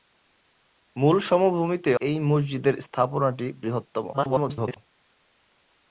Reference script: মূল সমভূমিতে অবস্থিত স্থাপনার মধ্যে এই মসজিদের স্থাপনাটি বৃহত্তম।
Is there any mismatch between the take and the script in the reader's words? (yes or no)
yes